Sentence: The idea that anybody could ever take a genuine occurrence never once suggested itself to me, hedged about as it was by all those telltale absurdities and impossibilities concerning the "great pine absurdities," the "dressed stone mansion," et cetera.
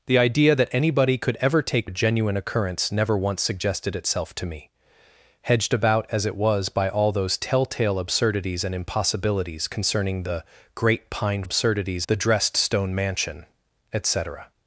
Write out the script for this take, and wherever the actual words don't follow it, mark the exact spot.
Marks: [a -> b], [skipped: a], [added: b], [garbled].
The idea that anybody could ever take a genuine occurrence never once suggested itself to me, hedged about as it was by all those telltale absurdities and impossibilities concerning the "great pine absurdities," the "dressed stone mansion," et cetera.